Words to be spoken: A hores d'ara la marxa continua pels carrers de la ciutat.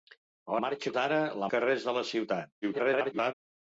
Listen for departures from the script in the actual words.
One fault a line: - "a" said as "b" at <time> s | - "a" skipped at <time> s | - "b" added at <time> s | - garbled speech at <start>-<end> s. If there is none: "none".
- "hores" said as "marxa" at 0.6 s
- "marxa continua pels" skipped at 1.5 s
- garbled speech at 2.6-3.3 s